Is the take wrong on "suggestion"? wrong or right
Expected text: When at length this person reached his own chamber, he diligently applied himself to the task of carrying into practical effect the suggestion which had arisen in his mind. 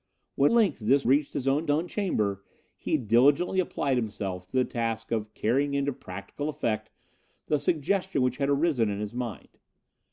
right